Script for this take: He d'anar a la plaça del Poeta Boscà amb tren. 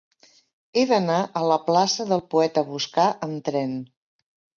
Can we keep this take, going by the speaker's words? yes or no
yes